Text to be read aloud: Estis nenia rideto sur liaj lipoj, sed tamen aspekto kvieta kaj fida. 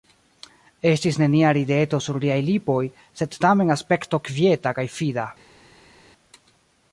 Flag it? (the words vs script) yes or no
no